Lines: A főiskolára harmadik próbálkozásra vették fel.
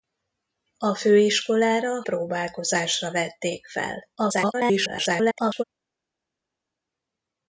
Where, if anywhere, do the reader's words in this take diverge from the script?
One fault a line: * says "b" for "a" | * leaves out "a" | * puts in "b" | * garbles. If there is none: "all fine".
* leaves out "harmadik"
* garbles